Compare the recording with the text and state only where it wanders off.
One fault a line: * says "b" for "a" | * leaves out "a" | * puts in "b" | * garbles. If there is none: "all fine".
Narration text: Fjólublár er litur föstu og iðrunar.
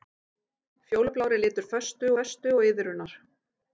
* puts in "föstu"